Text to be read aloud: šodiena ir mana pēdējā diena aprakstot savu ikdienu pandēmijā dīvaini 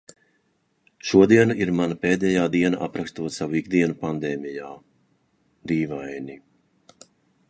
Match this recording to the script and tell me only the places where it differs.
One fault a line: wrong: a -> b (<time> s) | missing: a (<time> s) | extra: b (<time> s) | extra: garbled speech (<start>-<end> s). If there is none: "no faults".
no faults